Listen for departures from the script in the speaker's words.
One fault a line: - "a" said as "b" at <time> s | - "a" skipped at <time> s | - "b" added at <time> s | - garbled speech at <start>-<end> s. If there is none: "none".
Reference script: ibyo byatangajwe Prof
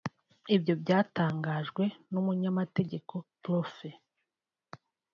- "n'umunyamategeko" added at 2.1 s